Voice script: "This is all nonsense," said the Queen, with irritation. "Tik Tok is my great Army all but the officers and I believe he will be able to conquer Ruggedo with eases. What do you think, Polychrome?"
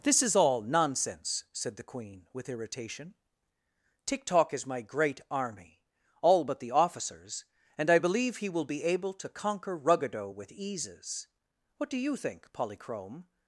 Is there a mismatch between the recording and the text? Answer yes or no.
no